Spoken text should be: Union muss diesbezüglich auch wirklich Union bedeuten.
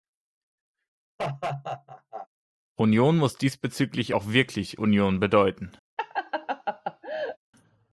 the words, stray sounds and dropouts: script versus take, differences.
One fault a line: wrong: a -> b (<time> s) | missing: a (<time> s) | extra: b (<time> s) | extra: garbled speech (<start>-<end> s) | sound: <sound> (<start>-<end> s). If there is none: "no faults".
sound: laugh (1.2-2.3 s)
sound: laugh (6.0-7.4 s)